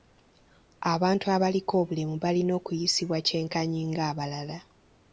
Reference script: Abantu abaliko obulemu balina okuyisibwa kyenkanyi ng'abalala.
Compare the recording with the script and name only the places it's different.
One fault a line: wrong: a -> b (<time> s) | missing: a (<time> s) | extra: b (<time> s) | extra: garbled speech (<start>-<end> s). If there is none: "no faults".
no faults